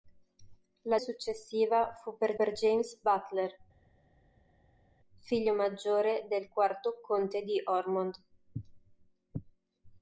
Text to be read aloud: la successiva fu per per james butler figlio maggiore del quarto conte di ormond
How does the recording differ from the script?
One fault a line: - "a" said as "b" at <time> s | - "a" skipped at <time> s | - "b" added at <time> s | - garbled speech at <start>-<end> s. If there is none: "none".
none